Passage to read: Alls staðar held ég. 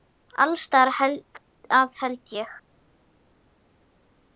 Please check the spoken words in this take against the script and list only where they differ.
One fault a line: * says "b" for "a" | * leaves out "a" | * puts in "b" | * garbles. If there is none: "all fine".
* puts in "að"